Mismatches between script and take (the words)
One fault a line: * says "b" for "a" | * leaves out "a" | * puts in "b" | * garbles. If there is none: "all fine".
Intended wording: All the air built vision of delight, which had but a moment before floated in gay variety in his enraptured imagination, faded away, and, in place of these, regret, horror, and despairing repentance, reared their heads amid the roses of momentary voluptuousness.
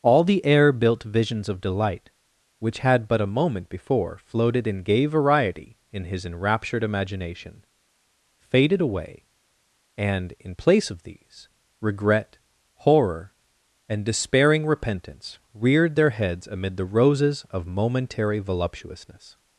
* says "visions" for "vision"